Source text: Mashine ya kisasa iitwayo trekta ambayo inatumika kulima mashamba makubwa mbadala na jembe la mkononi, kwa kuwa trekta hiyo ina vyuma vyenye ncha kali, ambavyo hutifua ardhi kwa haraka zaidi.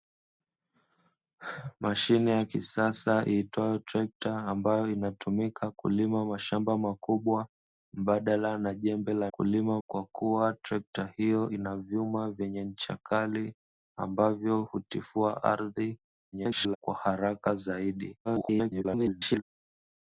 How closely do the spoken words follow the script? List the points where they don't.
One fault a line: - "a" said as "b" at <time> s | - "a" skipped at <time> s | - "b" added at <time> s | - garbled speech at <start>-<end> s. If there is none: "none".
- "mkononi" said as "kulima" at 9.3 s
- garbled speech at 16.3-16.8 s
- garbled speech at 18.2-19.4 s